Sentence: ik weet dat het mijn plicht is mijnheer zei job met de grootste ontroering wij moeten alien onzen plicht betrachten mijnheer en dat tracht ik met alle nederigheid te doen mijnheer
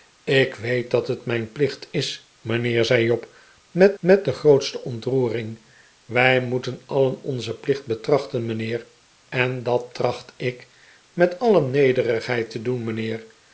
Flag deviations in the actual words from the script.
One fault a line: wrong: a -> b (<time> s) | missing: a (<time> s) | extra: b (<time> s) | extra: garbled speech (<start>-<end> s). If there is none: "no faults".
extra: met (4.0 s)